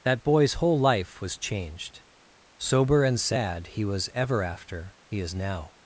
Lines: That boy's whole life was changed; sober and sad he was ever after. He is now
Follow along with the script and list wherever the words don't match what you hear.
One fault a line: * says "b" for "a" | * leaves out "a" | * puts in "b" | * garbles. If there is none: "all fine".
all fine